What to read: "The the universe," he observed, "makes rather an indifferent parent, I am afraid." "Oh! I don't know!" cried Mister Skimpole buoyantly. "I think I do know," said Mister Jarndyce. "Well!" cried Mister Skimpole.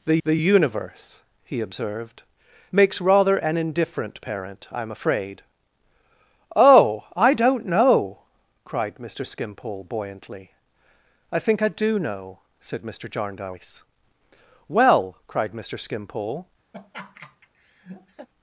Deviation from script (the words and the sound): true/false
true